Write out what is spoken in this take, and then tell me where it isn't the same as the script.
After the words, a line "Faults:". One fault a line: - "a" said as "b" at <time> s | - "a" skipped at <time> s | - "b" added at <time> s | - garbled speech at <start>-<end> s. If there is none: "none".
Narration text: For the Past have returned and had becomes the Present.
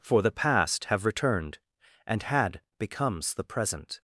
For the Past have returned and had becomes the Present.
Faults:
none